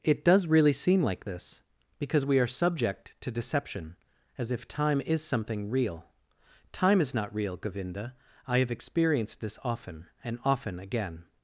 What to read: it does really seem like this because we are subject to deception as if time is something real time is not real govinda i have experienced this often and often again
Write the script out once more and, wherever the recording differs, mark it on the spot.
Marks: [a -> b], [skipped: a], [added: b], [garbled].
it does really seem like this because we are subject to deception as if time is something real time is not real govinda i have experienced this often and often again